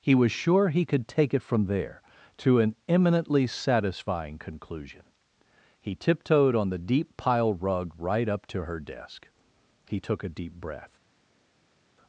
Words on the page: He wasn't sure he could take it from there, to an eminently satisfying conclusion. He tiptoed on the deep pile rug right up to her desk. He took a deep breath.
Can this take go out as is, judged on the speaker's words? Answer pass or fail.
fail